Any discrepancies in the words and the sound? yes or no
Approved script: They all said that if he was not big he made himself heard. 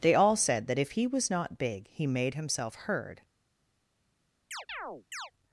yes